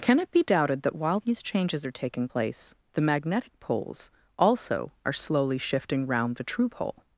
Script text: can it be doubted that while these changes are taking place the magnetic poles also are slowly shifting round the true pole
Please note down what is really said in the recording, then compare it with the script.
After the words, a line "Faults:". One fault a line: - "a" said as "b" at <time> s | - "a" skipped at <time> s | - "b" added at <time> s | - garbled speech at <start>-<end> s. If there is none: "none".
can it be doubted that while these changes are taking place the magnetic poles also are slowly shifting round the true pole
Faults:
none